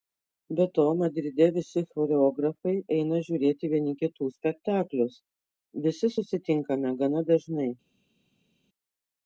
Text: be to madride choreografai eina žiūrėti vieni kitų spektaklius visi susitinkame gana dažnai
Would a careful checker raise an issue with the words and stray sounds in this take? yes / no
yes